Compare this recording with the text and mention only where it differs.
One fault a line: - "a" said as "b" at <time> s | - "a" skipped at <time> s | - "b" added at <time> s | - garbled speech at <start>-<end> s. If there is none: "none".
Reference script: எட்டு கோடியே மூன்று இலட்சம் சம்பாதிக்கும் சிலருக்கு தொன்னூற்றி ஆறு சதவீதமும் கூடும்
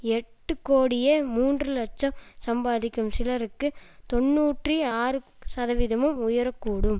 - "உயர" added at 6.2 s